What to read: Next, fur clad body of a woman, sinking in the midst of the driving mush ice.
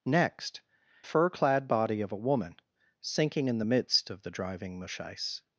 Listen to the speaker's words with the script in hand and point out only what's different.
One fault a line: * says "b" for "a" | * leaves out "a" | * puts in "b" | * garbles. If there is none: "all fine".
all fine